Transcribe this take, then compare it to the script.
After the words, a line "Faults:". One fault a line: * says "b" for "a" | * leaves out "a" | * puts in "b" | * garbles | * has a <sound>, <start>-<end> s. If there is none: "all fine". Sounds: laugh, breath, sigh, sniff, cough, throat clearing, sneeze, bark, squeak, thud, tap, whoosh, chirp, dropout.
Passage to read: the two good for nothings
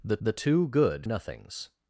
the the two good nothings
Faults:
* puts in "the"
* leaves out "for"